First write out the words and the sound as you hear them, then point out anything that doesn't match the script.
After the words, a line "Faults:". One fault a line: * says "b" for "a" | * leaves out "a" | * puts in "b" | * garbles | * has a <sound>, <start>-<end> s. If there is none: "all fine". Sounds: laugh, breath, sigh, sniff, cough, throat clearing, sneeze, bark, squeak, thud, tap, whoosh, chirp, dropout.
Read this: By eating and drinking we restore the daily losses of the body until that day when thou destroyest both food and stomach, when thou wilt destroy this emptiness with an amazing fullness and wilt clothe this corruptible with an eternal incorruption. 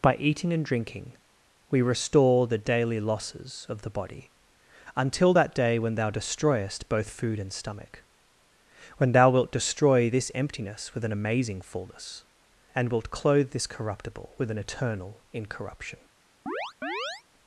By eating and drinking we restore the daily losses of the body until that day when thou destroyest both food and stomach, when thou wilt destroy this emptiness with an amazing fullness and wilt clothe this corruptible with an eternal incorruption.
Faults:
* has a chirp, 16.5-17.2 s